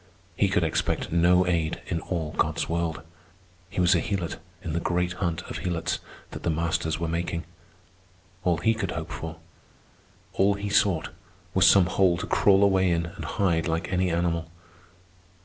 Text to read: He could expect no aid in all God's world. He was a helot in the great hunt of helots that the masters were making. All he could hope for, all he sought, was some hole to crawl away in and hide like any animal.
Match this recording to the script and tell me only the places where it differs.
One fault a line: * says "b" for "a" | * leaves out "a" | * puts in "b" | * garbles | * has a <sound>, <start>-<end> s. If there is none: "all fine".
all fine